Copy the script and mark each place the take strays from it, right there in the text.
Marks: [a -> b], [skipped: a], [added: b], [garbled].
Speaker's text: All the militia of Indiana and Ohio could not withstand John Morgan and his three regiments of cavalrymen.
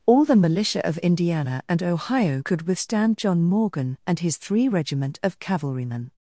All the militia of Indiana and Ohio could [skipped: not] withstand John Morgan and his three [regiments -> regiment] of cavalrymen.